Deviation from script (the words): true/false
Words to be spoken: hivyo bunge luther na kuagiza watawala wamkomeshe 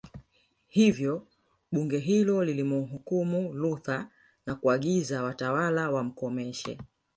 true